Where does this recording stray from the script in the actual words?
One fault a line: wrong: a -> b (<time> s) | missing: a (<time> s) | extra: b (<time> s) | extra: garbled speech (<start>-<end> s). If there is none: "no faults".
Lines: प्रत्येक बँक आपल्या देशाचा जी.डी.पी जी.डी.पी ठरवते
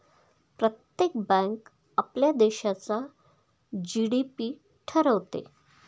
missing: जी.डी.पी (4.5 s)